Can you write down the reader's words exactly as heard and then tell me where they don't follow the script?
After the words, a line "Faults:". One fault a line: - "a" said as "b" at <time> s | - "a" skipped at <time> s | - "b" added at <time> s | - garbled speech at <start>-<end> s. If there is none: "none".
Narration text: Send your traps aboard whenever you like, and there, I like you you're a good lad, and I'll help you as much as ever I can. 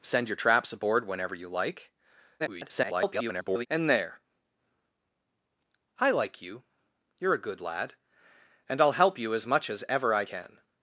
Send your traps aboard whenever you like, [garbled] and there, I like you you're a good lad, and I'll help you as much as ever I can.
Faults:
- garbled speech at 2.4-3.7 s